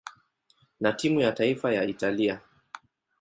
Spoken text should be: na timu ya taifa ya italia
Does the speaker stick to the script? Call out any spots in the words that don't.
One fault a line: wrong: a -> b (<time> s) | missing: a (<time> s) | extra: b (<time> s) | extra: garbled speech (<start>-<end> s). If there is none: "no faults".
no faults